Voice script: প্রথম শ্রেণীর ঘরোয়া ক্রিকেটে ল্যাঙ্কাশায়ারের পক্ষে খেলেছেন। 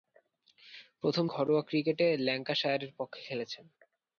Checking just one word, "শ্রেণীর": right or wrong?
wrong